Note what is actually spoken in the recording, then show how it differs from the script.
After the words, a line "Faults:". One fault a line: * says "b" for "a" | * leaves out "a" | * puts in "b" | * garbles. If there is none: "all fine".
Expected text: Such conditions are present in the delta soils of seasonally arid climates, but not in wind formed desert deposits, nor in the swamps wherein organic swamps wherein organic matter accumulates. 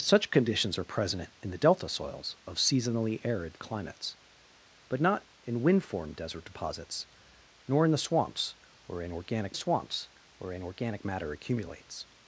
Such conditions are present in the delta soils of seasonally arid climates, but not in wind formed desert deposits, nor in the swamps wherein organic swamps wherein organic matter accumulates.
Faults:
all fine